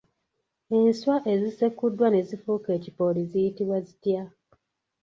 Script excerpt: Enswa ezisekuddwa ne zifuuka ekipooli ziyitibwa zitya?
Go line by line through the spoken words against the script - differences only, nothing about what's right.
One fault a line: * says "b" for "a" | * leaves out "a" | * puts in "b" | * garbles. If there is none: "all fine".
all fine